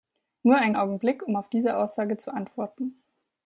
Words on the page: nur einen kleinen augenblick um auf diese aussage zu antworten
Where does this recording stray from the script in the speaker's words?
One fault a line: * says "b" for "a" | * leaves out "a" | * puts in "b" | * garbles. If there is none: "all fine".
* leaves out "kleinen"